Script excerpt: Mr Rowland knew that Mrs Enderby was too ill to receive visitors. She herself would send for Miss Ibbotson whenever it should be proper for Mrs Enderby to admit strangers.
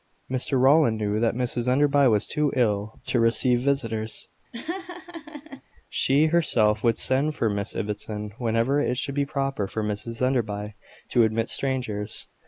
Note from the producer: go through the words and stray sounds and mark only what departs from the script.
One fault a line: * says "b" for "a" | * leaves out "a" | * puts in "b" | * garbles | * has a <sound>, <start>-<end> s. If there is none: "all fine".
* has a laugh, 4.5-5.6 s